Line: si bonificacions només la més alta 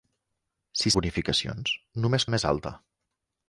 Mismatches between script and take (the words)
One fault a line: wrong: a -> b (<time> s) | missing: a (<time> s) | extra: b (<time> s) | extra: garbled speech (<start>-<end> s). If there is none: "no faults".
no faults